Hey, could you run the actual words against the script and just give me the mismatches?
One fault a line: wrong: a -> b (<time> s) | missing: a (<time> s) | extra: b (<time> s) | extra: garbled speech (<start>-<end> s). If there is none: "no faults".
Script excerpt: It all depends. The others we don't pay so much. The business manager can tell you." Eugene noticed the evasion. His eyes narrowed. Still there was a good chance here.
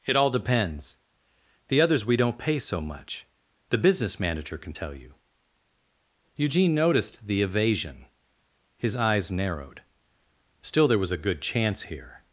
no faults